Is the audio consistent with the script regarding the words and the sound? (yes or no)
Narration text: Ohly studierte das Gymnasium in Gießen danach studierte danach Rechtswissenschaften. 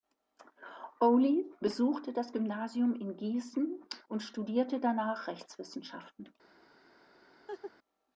no